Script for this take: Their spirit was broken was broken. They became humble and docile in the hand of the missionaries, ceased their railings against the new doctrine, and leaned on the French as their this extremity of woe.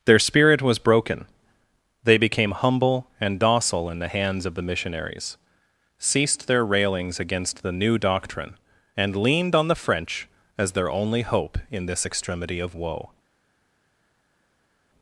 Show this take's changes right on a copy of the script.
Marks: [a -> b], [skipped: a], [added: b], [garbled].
Their spirit was broken [skipped: was broken.] They became humble and docile in the [hand -> hands] of the missionaries, ceased their railings against the new doctrine, and leaned on the French as their [added: only hope in] this extremity of woe.